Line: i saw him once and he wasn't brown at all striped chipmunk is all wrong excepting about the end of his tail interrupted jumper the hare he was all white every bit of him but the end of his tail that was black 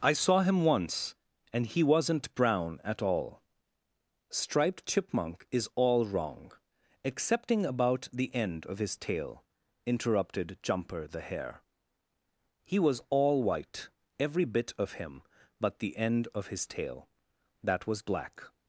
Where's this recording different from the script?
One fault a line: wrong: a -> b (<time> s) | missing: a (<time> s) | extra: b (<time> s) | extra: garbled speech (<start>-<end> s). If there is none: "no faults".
no faults